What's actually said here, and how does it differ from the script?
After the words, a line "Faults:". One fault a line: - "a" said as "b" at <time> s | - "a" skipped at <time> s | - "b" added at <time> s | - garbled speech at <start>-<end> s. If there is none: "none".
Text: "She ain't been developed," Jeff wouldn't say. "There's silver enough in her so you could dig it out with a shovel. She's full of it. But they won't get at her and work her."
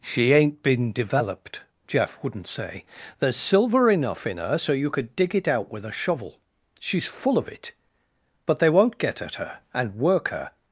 "She ain't been developed," Jeff wouldn't say. "There's silver enough in her so you could dig it out with a shovel. She's full of it. But they won't get at her and work her."
Faults:
none